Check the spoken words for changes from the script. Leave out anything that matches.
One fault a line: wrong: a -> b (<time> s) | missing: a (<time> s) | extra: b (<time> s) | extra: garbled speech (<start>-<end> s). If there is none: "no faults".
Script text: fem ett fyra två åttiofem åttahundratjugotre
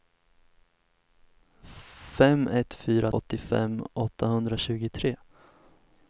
missing: två (3.1 s)